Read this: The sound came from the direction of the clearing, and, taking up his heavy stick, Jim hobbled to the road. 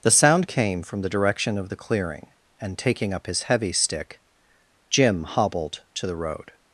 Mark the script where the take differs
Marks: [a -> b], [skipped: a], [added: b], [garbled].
The sound came from the direction of the clearing, and, taking up his heavy stick, Jim hobbled to the road.